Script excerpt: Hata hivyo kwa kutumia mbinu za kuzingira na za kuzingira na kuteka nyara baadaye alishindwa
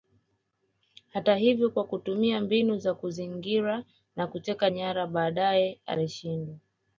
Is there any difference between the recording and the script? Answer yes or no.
yes